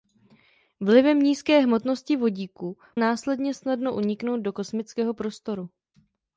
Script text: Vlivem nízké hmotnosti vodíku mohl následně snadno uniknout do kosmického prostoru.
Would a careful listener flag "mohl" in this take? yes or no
yes